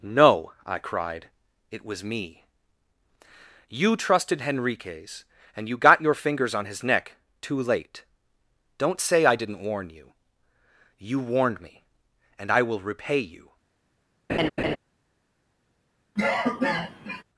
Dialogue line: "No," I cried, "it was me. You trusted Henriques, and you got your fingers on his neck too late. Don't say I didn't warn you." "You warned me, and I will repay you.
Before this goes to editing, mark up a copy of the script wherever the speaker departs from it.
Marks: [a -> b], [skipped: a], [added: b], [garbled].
"No," I cried, "it was me. You trusted Henriques, and you got your fingers on his neck too late. Don't say I didn't warn you." "You warned me, and I will repay you.